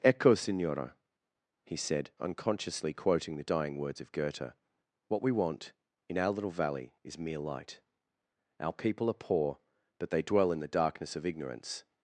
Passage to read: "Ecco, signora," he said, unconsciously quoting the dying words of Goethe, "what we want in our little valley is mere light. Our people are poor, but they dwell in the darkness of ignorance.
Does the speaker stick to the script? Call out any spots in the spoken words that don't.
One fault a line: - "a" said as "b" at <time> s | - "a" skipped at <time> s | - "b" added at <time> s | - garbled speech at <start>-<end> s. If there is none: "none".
none